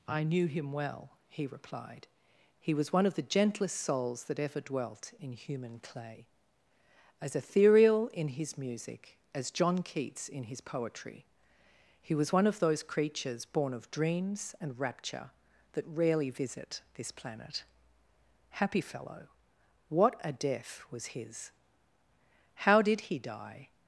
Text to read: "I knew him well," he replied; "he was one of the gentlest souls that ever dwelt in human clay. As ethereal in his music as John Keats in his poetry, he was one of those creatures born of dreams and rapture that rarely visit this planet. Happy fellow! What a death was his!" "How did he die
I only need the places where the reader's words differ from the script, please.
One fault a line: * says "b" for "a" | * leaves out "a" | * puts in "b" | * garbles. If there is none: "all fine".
all fine